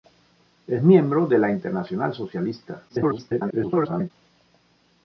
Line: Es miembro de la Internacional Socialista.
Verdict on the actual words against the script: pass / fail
fail